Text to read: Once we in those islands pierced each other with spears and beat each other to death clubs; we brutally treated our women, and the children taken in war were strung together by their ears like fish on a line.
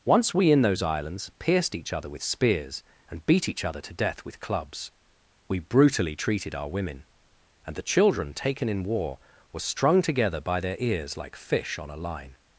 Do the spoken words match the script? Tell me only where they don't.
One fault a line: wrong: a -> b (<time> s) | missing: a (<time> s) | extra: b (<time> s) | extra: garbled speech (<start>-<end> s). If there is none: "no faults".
extra: with (4.2 s)